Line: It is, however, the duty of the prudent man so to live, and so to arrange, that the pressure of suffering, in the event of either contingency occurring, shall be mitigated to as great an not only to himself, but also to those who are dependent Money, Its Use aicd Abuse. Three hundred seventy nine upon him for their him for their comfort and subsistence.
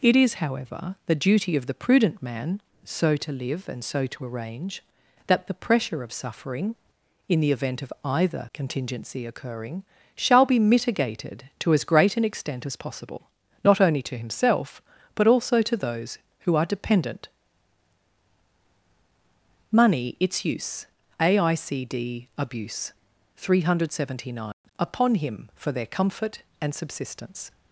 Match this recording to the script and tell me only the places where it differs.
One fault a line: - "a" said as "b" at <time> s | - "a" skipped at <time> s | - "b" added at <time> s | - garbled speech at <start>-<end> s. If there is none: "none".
- "extent as possible" added at 12.2 s
- "him for their" skipped at 25.9 s